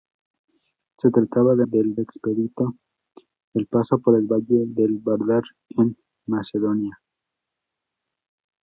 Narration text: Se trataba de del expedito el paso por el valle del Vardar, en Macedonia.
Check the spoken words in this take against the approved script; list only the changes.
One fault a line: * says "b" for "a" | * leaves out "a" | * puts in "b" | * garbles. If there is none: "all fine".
all fine